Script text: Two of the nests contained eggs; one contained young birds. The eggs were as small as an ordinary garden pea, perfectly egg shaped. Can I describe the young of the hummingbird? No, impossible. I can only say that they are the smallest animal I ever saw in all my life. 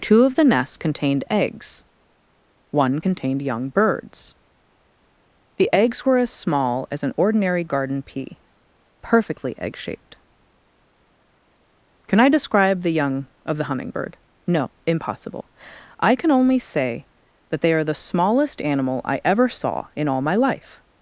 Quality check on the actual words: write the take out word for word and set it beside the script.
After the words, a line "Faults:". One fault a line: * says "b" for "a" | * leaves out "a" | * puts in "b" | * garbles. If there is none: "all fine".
Two of the nests contained eggs; one contained young birds. The eggs were as small as an ordinary garden pea, perfectly egg shaped. Can I describe the young of the hummingbird? No, impossible. I can only say that they are the smallest animal I ever saw in all my life.
Faults:
all fine